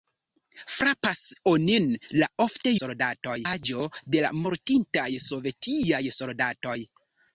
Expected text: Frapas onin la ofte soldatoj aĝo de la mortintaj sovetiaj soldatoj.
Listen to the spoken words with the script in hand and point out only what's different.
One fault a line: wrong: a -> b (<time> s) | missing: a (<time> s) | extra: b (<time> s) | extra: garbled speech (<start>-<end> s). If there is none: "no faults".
no faults